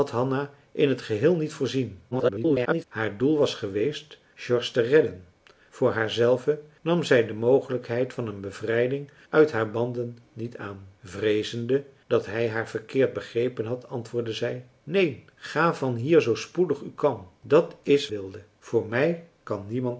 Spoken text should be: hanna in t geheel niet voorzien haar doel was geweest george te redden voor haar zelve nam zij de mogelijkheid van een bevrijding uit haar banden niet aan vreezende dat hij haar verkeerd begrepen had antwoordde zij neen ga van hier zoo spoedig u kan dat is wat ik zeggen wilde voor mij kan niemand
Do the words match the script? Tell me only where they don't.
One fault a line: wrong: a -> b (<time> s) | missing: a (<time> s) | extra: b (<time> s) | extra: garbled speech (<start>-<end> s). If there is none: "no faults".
extra: garbled speech (2.1-2.8 s)
missing: wat ik zeggen (18.1 s)